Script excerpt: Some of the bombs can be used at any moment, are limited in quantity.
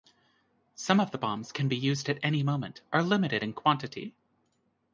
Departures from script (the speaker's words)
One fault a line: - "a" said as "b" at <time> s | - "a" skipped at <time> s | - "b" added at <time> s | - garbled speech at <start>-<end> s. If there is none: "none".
none